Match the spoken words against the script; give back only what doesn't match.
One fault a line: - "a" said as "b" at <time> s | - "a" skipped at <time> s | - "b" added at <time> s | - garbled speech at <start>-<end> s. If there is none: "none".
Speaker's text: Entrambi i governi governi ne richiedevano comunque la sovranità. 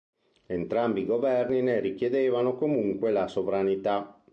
- "governi" skipped at 1.6 s